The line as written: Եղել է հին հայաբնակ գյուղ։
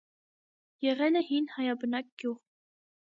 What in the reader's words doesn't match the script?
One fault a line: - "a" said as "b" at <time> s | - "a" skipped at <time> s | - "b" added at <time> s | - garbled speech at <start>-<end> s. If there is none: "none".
none